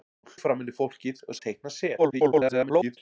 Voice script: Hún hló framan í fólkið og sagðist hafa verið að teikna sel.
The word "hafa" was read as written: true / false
false